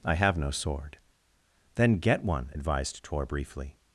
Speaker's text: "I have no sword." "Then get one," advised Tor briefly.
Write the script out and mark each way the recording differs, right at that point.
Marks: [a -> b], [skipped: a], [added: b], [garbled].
"I have no sword." "Then get one," advised Tor briefly.